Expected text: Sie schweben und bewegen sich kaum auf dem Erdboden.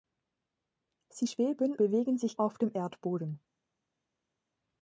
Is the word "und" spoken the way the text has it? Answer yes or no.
no